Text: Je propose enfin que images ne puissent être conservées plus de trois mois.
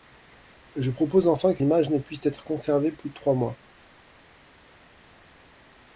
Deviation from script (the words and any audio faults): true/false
false